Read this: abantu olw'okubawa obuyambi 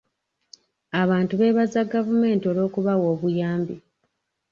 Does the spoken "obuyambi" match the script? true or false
true